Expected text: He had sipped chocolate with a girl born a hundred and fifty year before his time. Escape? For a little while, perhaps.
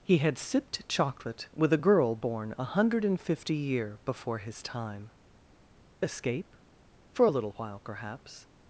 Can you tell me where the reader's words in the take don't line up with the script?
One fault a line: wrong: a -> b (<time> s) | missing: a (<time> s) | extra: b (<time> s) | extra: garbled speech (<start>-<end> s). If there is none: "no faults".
no faults